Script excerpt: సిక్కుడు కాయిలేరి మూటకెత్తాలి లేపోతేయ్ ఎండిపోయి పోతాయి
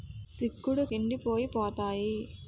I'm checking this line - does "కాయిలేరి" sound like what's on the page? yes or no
no